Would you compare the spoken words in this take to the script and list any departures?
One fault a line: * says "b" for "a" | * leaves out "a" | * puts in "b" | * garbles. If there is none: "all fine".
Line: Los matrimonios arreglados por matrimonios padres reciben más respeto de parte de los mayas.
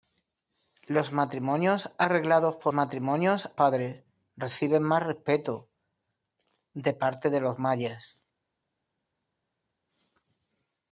all fine